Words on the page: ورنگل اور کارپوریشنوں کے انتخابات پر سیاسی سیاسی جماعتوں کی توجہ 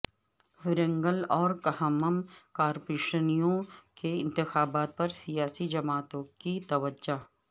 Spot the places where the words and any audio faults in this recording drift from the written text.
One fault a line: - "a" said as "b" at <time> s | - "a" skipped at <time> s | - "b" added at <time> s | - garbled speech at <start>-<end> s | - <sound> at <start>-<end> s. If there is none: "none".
- "کھمم" added at 1.6 s
- "سیاسی" skipped at 5.7 s